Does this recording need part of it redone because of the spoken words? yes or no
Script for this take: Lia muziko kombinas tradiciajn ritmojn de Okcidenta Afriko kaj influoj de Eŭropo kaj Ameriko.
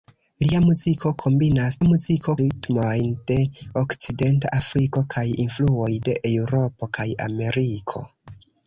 yes